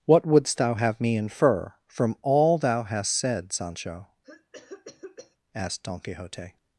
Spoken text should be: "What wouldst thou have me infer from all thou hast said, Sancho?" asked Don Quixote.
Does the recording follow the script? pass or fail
pass